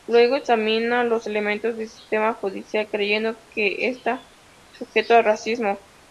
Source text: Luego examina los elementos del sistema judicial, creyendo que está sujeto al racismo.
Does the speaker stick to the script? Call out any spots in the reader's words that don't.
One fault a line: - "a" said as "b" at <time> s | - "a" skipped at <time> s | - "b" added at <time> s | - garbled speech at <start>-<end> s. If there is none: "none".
none